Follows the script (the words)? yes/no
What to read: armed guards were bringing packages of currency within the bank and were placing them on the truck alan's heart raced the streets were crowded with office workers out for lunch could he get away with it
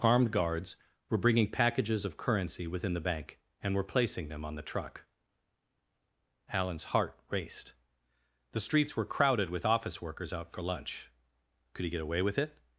yes